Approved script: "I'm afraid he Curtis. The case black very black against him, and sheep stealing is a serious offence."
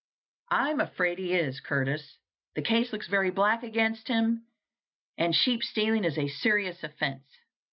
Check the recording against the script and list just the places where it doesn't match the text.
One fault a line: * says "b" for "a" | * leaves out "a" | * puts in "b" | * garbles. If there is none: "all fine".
* puts in "is"
* says "looks" for "black"